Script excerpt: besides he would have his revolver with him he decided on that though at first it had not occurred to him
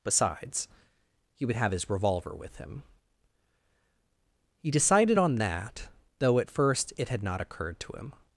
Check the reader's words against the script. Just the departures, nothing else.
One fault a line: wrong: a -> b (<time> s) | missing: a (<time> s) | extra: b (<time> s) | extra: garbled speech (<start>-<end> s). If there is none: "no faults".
no faults